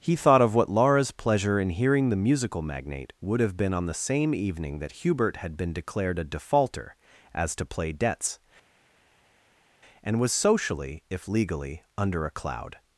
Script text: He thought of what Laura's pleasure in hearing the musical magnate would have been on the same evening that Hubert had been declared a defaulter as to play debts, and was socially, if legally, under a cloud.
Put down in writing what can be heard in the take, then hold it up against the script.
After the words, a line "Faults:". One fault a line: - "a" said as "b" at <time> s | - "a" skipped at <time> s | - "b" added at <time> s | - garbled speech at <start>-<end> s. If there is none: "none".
He thought of what Laura's pleasure in hearing the musical magnate would have been on the same evening that Hubert had been declared a defaulter as to play debts, and was socially, if legally, under a cloud.
Faults:
none